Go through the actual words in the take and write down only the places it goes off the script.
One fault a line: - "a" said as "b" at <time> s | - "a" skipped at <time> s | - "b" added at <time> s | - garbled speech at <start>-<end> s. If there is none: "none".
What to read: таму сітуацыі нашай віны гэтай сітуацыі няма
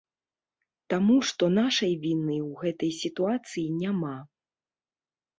- "сітуацыі" said as "што" at 1.3 s
- "ў" added at 2.4 s